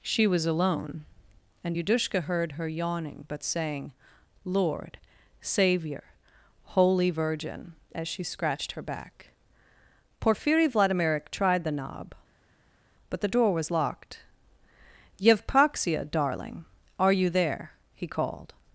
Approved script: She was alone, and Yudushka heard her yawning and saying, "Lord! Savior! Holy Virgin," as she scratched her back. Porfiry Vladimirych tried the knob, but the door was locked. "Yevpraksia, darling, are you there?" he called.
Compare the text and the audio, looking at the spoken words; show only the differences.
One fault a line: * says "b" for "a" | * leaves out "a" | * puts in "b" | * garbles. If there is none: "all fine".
* says "but" for "and"